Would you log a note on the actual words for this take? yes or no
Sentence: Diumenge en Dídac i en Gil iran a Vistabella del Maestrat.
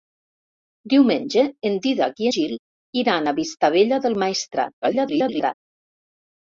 yes